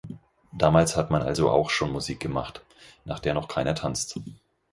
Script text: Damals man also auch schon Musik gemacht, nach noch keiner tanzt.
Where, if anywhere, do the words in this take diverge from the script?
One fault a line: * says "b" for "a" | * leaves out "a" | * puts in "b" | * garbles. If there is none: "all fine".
* puts in "hat"
* puts in "der"